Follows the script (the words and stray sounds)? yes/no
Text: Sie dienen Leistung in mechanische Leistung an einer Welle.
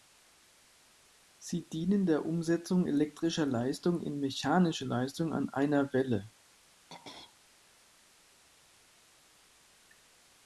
no